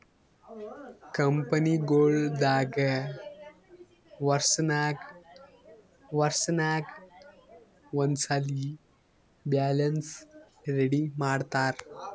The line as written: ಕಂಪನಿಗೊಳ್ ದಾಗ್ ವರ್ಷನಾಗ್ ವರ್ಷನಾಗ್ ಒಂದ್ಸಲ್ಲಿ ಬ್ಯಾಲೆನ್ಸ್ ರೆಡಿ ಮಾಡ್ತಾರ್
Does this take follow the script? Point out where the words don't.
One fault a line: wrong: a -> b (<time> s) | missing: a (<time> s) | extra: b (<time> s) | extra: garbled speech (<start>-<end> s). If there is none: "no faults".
no faults